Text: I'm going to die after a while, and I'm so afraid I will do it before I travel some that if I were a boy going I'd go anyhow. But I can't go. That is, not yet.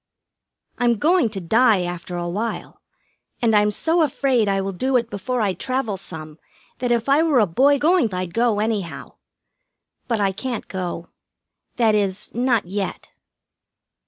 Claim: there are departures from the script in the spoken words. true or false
false